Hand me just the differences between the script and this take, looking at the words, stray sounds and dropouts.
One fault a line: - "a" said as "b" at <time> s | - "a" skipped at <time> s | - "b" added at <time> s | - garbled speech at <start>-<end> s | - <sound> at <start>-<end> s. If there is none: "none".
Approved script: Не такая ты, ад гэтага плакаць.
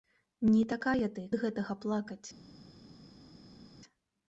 none